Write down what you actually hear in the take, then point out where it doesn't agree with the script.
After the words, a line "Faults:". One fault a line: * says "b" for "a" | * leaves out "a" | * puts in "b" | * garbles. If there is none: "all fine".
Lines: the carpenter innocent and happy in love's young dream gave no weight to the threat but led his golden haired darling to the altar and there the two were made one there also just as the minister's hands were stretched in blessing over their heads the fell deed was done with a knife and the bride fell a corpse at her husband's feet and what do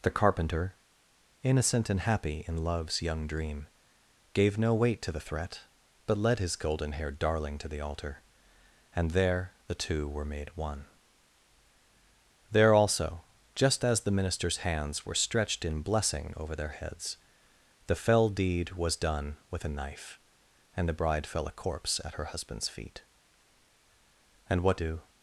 the carpenter innocent and happy in love's young dream gave no weight to the threat but led his golden haired darling to the altar and there the two were made one there also just as the minister's hands were stretched in blessing over their heads the fell deed was done with a knife and the bride fell a corpse at her husband's feet and what do
Faults:
all fine